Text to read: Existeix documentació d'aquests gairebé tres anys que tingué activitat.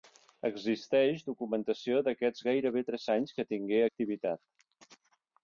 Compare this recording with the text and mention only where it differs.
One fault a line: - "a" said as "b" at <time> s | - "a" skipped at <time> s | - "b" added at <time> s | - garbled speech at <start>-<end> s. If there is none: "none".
none